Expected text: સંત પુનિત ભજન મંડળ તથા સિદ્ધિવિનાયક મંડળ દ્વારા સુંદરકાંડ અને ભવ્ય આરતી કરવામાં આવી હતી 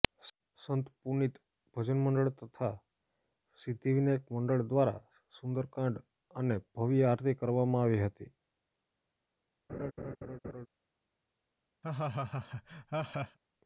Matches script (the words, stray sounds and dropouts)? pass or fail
fail